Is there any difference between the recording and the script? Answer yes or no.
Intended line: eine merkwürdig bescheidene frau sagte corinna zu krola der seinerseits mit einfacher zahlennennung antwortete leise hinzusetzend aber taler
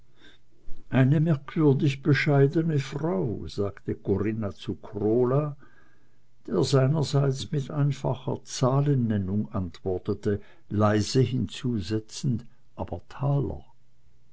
no